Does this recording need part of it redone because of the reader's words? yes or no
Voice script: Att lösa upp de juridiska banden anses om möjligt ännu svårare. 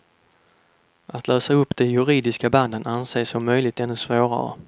no